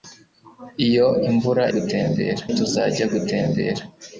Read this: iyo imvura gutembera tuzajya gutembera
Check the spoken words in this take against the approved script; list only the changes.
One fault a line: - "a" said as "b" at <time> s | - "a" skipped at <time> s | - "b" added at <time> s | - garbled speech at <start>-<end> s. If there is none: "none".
none